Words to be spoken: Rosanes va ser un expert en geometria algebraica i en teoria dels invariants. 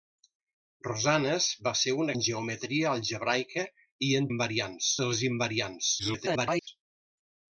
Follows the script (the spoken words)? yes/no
no